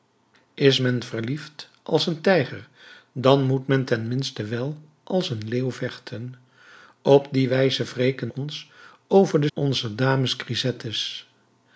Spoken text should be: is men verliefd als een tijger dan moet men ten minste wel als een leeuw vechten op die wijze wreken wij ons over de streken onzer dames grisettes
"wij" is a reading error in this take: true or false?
true